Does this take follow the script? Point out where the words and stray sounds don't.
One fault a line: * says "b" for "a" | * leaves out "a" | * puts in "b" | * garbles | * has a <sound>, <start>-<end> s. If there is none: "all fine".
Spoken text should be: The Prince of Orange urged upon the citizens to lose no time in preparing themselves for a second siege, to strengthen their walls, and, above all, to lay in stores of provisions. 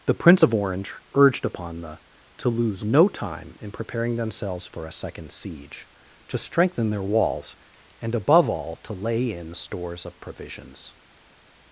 * leaves out "citizens"